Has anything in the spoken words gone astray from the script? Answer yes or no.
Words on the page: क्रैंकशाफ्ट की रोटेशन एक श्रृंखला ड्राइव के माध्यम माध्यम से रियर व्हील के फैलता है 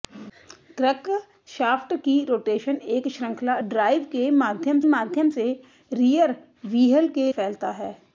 no